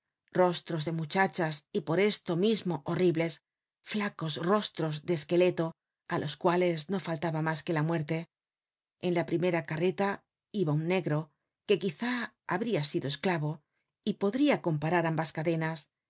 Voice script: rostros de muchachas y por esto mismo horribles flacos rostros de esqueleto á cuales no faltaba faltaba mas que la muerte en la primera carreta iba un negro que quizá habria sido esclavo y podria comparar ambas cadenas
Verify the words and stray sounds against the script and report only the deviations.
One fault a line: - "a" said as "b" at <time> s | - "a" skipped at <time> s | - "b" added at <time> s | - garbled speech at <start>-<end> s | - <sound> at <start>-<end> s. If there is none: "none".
- "los" added at 6.2 s
- "faltaba" skipped at 7.4 s